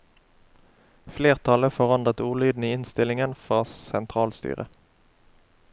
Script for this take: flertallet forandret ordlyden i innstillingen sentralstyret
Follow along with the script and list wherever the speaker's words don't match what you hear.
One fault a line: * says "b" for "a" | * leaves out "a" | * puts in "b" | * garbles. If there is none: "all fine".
* puts in "fra"